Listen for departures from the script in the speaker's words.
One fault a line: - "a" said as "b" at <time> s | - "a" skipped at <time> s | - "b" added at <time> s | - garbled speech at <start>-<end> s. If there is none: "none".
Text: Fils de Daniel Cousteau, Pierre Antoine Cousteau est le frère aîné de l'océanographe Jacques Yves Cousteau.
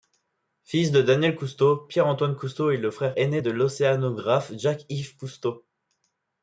none